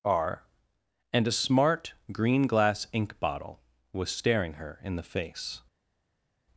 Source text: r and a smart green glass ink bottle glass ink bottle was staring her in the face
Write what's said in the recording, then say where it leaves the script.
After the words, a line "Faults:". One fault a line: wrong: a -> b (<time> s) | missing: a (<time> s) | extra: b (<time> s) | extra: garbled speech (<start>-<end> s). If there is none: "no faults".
r and a smart green glass ink bottle was staring her in the face
Faults:
missing: glass ink bottle (3.6 s)